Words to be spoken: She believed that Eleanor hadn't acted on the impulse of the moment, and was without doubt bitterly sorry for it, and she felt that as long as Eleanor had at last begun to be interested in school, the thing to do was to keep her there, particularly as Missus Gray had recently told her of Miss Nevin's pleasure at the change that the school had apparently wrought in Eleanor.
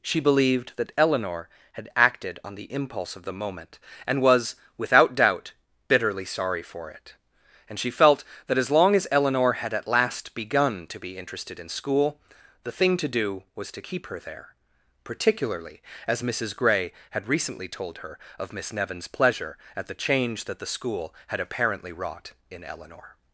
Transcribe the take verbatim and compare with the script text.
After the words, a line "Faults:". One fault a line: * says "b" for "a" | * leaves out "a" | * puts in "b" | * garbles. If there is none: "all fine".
She believed that Eleanor had acted on the impulse of the moment, and was without doubt bitterly sorry for it, and she felt that as long as Eleanor had at last begun to be interested in school, the thing to do was to keep her there, particularly as Missus Gray had recently told her of Miss Nevin's pleasure at the change that the school had apparently wrought in Eleanor.
Faults:
* says "had" for "hadn't"